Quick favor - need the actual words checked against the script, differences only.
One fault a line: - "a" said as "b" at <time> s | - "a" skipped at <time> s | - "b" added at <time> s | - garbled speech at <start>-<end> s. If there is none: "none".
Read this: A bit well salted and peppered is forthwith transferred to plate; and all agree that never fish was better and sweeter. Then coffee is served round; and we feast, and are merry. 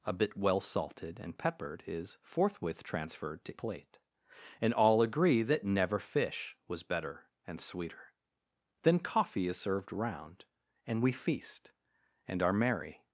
none